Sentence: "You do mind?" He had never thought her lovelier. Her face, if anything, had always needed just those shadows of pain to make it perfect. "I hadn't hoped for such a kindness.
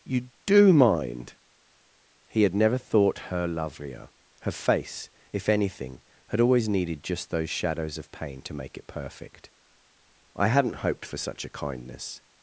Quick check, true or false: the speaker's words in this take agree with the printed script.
true